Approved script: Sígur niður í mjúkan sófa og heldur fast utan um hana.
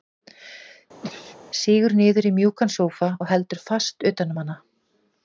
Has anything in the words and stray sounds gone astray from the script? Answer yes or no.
yes